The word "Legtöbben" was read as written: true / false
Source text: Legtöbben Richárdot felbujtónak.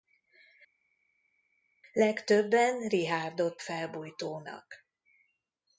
true